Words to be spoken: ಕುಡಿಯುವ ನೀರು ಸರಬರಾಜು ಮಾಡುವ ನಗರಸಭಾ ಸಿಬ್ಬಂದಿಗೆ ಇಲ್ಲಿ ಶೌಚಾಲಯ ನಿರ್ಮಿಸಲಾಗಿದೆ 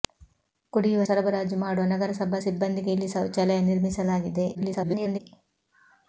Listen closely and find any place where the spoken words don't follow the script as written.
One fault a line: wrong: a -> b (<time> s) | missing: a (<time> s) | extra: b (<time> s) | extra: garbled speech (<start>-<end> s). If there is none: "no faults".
missing: ನೀರು (1.0 s)
extra: garbled speech (4.5-5.2 s)